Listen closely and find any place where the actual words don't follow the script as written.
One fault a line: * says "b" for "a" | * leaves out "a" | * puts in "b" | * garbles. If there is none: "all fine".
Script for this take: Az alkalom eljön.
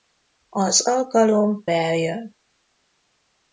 all fine